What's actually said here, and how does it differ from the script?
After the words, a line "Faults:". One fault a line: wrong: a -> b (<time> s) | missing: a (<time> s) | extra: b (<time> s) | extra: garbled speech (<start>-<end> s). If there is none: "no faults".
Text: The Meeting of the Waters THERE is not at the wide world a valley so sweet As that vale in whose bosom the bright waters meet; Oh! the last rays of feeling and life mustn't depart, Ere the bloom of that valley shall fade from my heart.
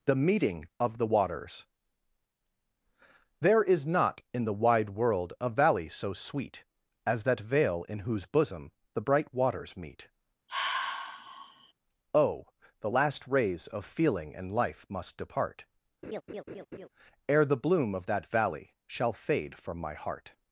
The Meeting of the Waters THERE is not in the wide world a valley so sweet As that vale in whose bosom the bright waters meet; Oh! the last rays of feeling and life must depart, Ere the bloom of that valley shall fade from my heart.
Faults:
wrong: at -> in (4.3 s)
wrong: mustn't -> must (14.9 s)